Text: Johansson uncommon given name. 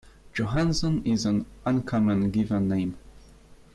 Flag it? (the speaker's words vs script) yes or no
yes